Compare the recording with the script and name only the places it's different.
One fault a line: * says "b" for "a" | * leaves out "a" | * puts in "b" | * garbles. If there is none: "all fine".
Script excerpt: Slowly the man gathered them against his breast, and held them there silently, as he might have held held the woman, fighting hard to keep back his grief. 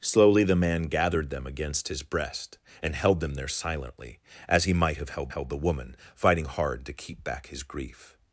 all fine